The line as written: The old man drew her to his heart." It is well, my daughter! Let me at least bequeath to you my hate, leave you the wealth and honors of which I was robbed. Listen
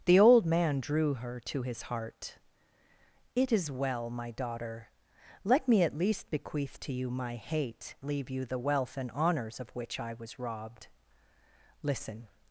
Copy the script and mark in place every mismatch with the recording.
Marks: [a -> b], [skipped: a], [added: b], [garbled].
The old man drew her to his heart." It is well, my daughter! Let me at least bequeath to you my hate, leave you the wealth and honors of which I was robbed. Listen